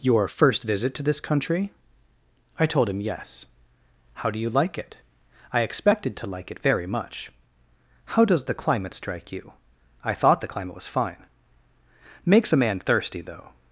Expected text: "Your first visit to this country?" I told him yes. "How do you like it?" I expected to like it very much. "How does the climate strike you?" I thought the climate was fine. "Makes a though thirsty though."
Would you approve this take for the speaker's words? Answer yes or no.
no